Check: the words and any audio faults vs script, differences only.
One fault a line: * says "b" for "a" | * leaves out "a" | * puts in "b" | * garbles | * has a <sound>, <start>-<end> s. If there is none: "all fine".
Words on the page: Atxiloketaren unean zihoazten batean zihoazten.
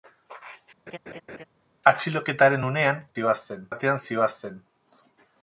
* has a laugh, 0.9-1.4 s